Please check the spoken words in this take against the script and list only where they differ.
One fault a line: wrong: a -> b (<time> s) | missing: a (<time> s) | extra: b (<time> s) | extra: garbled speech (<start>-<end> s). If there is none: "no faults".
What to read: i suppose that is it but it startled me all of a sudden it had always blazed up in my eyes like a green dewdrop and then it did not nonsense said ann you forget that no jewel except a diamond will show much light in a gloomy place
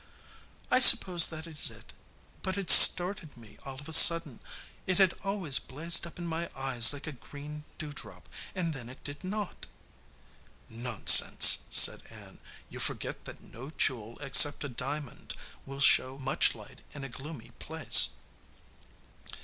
no faults